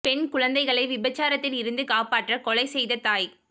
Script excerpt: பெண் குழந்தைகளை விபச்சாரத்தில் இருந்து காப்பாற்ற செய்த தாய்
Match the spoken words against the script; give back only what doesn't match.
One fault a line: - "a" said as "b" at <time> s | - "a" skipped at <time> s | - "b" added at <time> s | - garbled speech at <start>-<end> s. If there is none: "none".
- "கொலை" added at 2.4 s